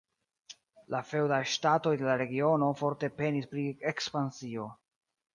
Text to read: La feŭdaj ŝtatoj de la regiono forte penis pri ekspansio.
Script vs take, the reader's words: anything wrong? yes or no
no